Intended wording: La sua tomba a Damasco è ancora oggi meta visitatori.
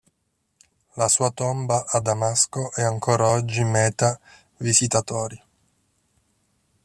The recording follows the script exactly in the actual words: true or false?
true